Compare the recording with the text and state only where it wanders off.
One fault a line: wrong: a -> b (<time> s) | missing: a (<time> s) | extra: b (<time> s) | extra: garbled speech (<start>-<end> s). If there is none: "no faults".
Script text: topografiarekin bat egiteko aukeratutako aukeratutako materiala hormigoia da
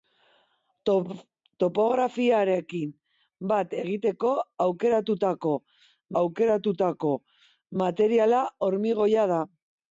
no faults